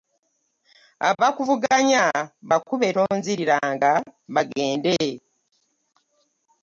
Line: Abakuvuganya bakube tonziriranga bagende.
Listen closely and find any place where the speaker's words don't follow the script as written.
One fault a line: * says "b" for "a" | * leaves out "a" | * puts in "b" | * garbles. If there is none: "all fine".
all fine